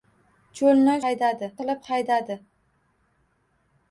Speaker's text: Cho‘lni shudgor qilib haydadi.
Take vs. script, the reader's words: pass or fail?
fail